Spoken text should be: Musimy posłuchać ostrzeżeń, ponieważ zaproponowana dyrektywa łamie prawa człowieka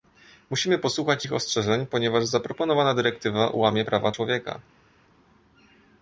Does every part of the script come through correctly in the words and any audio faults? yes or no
no